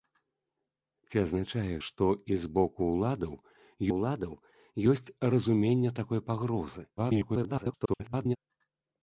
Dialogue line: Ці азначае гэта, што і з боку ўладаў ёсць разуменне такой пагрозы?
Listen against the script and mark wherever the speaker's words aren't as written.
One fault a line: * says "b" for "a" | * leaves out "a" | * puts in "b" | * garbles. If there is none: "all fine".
* leaves out "гэта"
* puts in "ўладаў"
* garbles